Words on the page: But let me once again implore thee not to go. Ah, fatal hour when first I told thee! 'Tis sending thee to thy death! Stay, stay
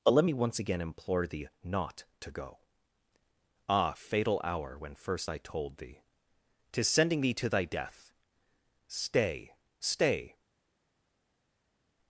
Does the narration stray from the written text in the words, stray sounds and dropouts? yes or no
no